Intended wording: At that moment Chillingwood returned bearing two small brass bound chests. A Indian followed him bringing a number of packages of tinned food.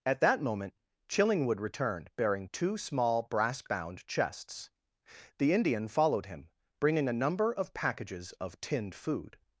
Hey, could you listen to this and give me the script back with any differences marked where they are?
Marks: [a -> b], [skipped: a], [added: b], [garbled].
At that moment Chillingwood returned bearing two small brass bound chests. [A -> The] Indian followed him bringing a number of packages of tinned food.